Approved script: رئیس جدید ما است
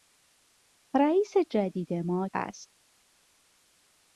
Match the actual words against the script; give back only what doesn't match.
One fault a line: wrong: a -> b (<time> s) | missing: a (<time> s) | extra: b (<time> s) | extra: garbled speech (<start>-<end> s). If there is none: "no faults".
no faults